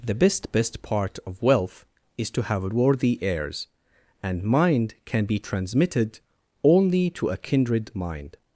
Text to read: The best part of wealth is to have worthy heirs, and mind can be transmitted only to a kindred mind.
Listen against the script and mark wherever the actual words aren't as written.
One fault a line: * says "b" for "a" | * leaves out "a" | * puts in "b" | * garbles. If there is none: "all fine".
* puts in "best"